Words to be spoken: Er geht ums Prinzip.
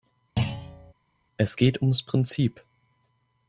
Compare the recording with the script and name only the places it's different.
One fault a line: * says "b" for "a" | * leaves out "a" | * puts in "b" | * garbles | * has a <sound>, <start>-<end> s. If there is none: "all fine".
* has a thud, 0.4-0.9 s
* says "Es" for "Er"